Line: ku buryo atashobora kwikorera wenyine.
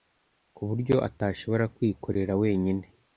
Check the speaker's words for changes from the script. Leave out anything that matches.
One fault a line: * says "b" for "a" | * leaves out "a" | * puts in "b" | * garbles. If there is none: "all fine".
all fine